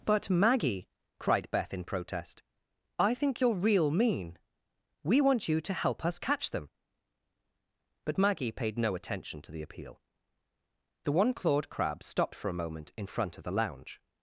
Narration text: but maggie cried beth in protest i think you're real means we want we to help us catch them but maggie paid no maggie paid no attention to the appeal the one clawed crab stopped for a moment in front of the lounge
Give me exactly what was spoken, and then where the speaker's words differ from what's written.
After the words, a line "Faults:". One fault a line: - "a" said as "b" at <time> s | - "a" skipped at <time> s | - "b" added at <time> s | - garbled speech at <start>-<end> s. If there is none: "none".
but maggie cried beth in protest i think you're real mean we want you to help us catch them but maggie paid no attention to the appeal the one clawed crab stopped for a moment in front of the lounge
Faults:
- "means" said as "mean" at 3.9 s
- "we" said as "you" at 5.5 s
- "maggie paid no" skipped at 8.9 s